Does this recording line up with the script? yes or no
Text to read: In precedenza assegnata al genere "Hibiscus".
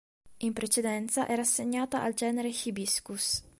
no